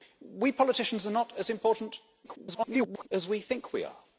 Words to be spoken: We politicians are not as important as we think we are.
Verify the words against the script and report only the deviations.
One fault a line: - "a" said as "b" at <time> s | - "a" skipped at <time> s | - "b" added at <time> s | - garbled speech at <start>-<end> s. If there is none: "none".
- garbled speech at 2.2-3.1 s